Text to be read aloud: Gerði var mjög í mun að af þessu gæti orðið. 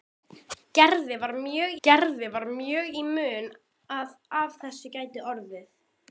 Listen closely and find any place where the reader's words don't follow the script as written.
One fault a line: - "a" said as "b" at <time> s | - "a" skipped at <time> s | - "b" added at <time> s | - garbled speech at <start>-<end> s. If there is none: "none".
- "gerði var mjög" added at 1.9 s